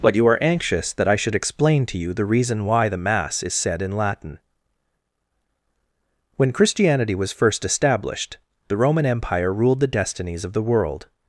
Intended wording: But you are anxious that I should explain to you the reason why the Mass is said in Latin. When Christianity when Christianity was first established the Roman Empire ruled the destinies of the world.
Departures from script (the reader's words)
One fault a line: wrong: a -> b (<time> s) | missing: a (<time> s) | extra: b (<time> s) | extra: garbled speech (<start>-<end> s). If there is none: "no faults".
missing: when Christianity (7.1 s)